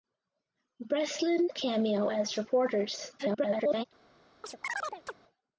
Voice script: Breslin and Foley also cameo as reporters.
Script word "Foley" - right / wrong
wrong